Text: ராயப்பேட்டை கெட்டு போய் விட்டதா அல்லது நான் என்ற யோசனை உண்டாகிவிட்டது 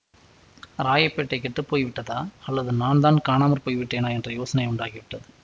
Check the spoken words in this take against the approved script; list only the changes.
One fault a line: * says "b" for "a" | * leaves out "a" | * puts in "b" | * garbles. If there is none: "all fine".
* puts in "தான் காணாமற் போய்விட்டேனா"